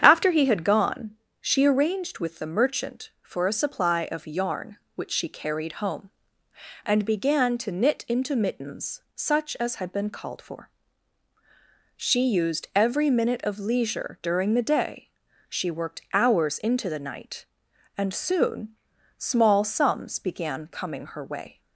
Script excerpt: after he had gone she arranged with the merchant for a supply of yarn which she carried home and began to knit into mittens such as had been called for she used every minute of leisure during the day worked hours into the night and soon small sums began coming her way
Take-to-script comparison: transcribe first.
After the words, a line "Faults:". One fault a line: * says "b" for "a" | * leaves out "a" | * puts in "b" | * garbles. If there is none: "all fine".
after he had gone she arranged with the merchant for a supply of yarn which she carried home and began to knit into mittens such as had been called for she used every minute of leisure during the day she worked hours into the night and soon small sums began coming her way
Faults:
* puts in "she"